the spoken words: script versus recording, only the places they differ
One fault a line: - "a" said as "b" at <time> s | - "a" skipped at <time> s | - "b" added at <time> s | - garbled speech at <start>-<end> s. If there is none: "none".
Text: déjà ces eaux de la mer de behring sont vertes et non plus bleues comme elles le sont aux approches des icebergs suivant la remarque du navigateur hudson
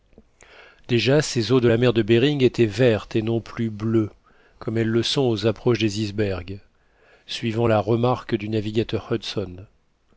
- "sont" said as "étaient" at 2.4 s